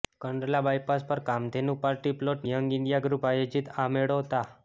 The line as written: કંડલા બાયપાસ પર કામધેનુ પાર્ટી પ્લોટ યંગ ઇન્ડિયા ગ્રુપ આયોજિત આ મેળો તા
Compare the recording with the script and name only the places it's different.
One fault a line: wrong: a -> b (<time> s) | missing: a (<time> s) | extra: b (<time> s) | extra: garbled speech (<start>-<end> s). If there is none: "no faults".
no faults